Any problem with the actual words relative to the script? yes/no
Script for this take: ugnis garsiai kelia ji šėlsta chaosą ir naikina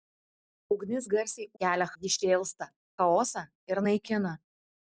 no